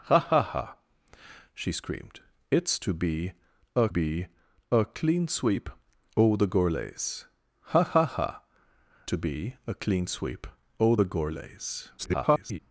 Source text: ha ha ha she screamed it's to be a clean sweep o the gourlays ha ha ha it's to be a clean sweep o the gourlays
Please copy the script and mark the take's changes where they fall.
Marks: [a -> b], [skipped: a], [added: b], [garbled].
ha ha ha she screamed it's to be a [added: be a] clean sweep o the gourlays ha ha ha [skipped: it's] to be a clean sweep o the gourlays [garbled]